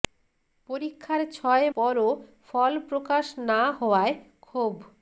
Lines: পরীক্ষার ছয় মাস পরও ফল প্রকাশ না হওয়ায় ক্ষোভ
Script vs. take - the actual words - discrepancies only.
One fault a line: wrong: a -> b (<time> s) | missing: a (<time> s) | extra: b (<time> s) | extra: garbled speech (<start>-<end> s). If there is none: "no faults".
missing: মাস (1.6 s)